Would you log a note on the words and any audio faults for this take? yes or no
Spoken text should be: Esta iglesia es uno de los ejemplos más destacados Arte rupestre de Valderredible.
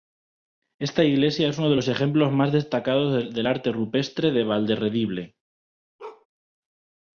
yes